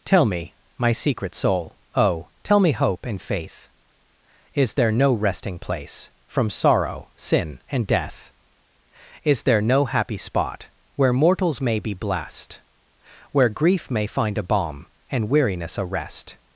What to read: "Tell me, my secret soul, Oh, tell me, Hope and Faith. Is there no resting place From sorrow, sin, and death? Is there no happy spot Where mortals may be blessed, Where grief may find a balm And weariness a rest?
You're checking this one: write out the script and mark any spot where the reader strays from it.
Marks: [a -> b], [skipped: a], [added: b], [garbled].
"Tell me, my secret soul, Oh, tell me, Hope and Faith. Is there no resting place From sorrow, sin, and death? Is there no happy spot Where mortals may be blessed, Where grief may find a balm And weariness a rest?